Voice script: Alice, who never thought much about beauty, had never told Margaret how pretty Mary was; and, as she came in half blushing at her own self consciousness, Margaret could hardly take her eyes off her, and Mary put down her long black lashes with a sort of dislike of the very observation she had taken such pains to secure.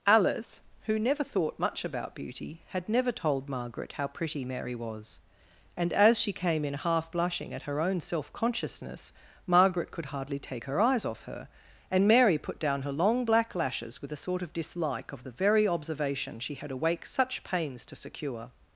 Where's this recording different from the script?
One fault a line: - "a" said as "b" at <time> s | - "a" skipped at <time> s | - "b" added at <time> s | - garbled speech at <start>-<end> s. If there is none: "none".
- "taken" said as "awake" at 16.7 s